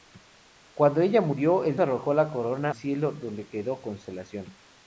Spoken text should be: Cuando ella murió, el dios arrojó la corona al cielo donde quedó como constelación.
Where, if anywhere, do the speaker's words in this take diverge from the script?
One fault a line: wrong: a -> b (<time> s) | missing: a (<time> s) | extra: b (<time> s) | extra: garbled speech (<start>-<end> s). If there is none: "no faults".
missing: dios (1.8 s)
missing: al (2.7 s)
missing: como (3.8 s)